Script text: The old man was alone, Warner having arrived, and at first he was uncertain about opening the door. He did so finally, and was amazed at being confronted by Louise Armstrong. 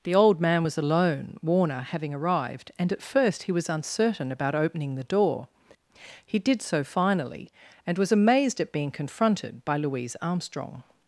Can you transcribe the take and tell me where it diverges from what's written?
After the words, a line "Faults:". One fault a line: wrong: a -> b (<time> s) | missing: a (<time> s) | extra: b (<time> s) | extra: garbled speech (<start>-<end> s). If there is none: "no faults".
The old man was alone, Warner having arrived, and at first he was uncertain about opening the door. He did so finally, and was amazed at being confronted by Louise Armstrong.
Faults:
no faults